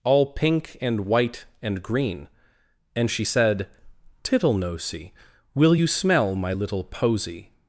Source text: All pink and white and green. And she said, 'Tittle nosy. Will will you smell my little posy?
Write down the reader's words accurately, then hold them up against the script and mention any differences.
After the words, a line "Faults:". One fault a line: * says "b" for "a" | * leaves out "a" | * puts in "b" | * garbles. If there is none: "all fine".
All pink and white and green. And she said, 'Tittle nosy. Will you smell my little posy?
Faults:
* leaves out "will"